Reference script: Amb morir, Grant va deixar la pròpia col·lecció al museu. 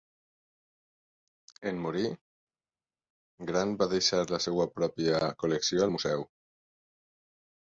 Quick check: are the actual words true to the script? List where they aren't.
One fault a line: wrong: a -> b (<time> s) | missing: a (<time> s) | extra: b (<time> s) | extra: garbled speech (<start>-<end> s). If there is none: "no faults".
wrong: Amb -> En (1.7 s)
extra: seva (4.4 s)